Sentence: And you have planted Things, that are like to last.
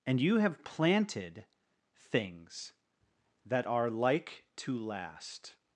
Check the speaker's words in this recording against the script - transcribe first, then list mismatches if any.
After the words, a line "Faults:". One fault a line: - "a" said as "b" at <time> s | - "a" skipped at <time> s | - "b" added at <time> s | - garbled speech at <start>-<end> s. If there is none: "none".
And you have planted Things, that are like to last.
Faults:
none